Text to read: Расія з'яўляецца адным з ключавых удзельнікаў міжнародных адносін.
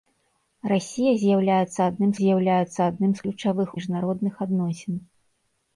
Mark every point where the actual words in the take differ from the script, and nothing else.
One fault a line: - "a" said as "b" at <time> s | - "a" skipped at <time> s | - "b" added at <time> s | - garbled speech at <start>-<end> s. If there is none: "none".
- "з'яўляецца адным" added at 2.2 s
- "удзельнікаў" skipped at 3.7 s